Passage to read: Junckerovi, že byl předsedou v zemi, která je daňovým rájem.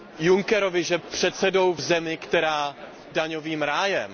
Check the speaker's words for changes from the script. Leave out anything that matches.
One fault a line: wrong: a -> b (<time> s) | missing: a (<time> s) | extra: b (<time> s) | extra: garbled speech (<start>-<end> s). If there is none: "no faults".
missing: byl (1.0 s)
missing: je (2.8 s)